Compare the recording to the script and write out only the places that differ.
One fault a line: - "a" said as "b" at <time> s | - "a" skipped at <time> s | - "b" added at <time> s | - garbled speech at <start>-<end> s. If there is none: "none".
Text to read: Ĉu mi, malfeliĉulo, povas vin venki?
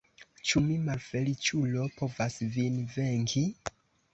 none